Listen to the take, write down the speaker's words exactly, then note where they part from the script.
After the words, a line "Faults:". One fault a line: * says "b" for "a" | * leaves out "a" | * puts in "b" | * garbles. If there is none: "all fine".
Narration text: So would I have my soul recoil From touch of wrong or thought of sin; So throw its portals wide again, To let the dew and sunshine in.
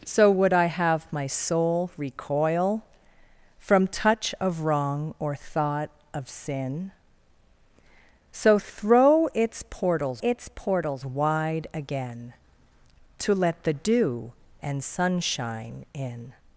So would I have my soul recoil From touch of wrong or thought of sin; So throw its portals its portals wide again, To let the dew and sunshine in.
Faults:
* puts in "its portals"